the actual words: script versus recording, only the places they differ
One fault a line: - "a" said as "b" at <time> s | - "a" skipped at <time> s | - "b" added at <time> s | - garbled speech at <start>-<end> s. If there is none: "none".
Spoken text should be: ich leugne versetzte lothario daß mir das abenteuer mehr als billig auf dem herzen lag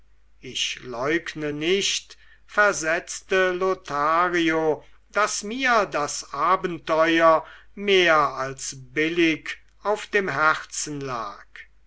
- "nicht" added at 1.5 s